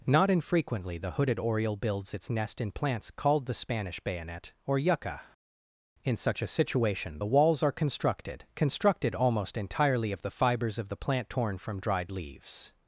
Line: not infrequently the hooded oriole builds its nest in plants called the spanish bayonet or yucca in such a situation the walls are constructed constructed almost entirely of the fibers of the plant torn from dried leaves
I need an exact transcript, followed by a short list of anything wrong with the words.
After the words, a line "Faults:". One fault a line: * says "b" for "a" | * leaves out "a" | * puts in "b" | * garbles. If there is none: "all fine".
not infrequently the hooded oriole builds its nest in plants called the spanish bayonet or yucca in such a situation the walls are constructed constructed almost entirely of the fibers of the plant torn from dried leaves
Faults:
all fine